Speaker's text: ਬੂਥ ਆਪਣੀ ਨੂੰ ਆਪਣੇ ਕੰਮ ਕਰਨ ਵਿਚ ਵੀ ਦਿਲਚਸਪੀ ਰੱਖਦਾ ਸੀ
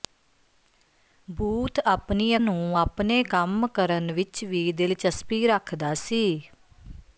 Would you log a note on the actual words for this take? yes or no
no